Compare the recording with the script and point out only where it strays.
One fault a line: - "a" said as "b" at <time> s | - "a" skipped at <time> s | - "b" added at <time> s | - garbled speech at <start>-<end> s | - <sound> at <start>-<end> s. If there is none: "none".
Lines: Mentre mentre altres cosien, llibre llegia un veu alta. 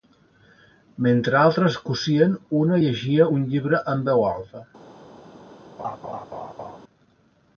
- "mentre" skipped at 1.4 s
- "llibre" said as "una" at 2.6 s
- "llibre en" added at 3.6 s
- laugh at 5.8-6.8 s